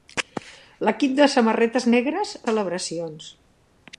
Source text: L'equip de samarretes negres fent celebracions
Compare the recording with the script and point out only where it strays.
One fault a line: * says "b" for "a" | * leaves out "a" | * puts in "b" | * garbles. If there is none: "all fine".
* leaves out "fent"